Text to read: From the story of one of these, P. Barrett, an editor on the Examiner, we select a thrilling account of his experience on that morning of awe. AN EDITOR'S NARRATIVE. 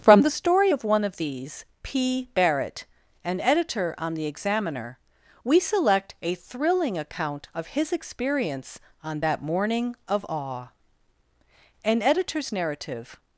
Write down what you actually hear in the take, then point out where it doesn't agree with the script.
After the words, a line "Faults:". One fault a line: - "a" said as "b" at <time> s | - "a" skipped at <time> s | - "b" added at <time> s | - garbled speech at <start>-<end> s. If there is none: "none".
From the story of one of these, P. Barrett, an editor on the Examiner, we select a thrilling account of his experience on that morning of awe. AN EDITOR'S NARRATIVE.
Faults:
none